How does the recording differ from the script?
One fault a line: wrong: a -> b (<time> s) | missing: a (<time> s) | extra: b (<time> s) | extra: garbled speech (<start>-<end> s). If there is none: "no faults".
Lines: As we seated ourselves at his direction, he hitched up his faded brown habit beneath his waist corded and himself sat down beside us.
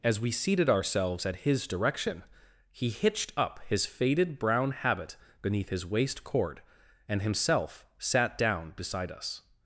wrong: corded -> cord (6.2 s)